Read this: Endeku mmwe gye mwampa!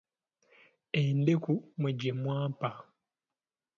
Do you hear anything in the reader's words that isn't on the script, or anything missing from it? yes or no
no